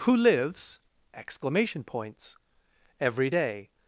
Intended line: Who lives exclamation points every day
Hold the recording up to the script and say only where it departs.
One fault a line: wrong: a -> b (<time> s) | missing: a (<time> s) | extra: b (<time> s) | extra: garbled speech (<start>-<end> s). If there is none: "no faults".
no faults